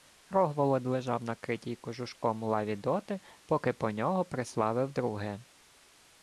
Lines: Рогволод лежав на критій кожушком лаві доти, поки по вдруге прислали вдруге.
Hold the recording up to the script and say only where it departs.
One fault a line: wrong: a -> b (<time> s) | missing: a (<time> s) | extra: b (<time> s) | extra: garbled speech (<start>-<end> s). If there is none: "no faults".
wrong: вдруге -> нього (3.9 s)